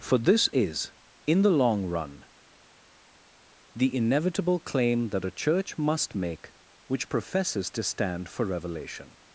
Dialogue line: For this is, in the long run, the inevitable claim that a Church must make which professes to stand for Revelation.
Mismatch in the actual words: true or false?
false